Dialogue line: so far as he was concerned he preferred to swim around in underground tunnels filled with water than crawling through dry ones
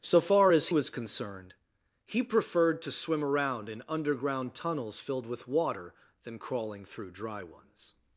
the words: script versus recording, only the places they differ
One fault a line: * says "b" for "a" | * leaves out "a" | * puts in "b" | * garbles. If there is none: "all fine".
* leaves out "he"